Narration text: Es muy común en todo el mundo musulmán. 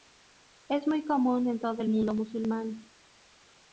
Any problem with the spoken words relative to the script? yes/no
no